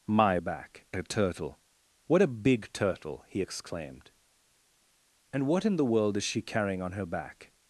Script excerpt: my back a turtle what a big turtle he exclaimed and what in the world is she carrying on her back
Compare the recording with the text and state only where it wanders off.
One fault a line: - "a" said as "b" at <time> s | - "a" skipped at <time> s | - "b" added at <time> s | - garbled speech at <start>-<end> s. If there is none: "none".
none